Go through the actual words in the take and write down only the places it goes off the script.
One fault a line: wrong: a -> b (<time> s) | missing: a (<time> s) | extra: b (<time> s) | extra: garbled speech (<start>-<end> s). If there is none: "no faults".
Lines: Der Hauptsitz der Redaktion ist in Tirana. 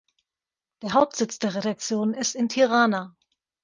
no faults